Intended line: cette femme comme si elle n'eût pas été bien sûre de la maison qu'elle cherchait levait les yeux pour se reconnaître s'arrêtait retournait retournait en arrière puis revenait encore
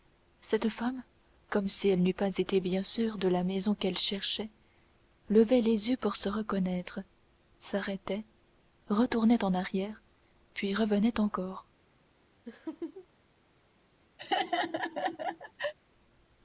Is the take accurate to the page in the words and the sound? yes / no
no